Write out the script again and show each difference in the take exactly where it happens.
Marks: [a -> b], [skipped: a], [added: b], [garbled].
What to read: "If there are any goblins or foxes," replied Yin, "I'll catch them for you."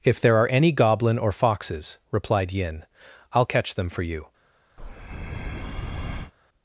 "If there are any [goblins -> goblin] or foxes," replied Yin, "I'll catch them for you."